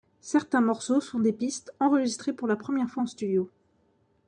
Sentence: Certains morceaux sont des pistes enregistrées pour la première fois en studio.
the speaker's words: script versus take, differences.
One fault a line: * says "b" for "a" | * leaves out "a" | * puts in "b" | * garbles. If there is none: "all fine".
all fine